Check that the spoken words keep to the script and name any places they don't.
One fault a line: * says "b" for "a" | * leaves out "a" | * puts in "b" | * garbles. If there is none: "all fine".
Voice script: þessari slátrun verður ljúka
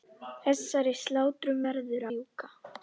all fine